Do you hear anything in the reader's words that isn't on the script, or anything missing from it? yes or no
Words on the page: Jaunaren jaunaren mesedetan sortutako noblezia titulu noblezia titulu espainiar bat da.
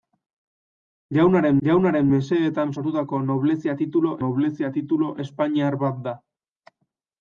no